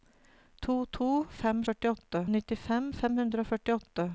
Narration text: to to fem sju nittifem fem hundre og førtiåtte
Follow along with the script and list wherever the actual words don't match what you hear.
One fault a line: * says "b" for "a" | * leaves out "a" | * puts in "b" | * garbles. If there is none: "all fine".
* says "førtiåtte" for "sju"